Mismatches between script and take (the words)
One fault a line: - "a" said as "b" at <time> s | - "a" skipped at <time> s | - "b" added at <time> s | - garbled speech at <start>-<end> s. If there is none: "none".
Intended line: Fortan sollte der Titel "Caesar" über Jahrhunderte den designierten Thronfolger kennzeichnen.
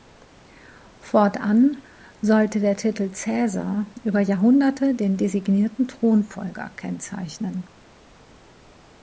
none